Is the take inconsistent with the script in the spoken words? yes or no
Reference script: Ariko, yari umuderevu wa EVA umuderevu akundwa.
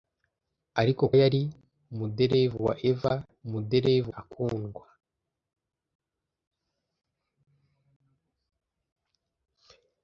no